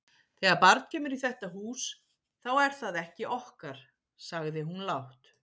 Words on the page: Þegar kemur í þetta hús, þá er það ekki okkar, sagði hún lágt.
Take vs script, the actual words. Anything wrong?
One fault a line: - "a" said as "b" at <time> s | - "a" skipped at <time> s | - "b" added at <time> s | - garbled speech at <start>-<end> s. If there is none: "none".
- "barn" added at 0.6 s